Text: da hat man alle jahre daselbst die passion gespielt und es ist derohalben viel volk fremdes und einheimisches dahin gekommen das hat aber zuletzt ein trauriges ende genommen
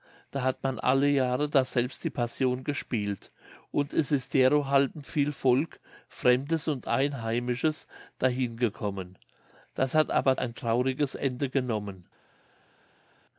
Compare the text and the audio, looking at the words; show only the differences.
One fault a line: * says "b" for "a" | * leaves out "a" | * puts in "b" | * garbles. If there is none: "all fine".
* leaves out "zuletzt"